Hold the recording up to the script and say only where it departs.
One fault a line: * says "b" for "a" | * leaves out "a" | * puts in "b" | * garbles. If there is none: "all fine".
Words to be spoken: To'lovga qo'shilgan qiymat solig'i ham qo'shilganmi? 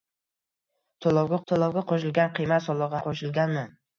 * puts in "to'lovga"
* leaves out "ham"